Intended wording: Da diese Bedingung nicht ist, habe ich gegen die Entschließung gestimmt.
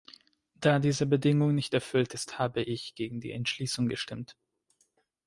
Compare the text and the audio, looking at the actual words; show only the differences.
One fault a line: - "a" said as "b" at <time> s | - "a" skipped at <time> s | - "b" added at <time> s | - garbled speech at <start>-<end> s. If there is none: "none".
- "erfüllt" added at 1.7 s